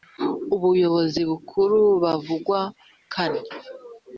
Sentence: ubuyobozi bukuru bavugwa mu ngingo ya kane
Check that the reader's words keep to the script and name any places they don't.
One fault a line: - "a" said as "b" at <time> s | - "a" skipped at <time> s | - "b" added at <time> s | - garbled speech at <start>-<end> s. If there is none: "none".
- "mu ngingo ya" skipped at 2.6 s